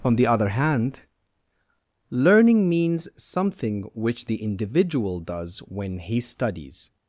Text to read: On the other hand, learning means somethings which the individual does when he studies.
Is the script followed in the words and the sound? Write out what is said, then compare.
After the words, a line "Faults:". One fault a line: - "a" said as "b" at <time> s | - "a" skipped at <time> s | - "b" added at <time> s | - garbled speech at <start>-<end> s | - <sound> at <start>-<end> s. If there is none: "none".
On the other hand, learning means something which the individual does when he studies.
Faults:
- "somethings" said as "something" at 3.1 s